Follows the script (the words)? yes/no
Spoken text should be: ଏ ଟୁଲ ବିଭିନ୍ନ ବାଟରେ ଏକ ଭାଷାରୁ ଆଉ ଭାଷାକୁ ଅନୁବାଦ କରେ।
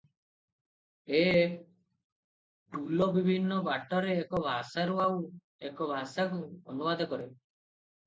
no